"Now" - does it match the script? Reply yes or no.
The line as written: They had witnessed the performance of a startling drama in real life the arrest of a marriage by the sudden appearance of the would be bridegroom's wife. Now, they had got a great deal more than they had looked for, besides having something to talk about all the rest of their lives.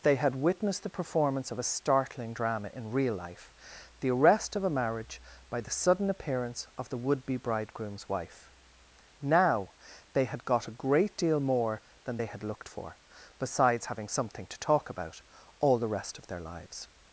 yes